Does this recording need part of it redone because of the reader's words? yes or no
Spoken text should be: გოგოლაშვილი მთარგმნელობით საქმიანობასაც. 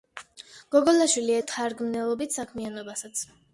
no